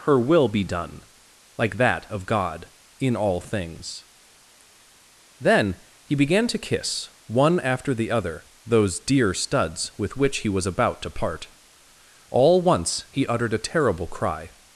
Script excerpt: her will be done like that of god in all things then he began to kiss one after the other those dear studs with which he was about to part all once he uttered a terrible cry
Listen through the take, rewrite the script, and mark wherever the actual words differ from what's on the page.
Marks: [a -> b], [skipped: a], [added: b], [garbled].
her will be done like that of god in all things then he began to kiss one after the other those dear studs with which he was about to part all once he uttered a terrible cry